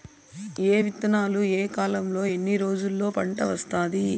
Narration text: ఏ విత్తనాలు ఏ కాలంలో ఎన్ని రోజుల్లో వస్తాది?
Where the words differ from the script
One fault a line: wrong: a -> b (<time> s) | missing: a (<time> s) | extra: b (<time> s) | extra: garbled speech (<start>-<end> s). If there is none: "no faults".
extra: పంట (3.1 s)